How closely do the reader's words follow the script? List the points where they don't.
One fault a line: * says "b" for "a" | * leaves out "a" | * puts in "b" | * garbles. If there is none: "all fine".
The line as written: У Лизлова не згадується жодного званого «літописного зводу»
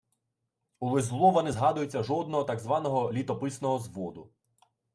* puts in "так"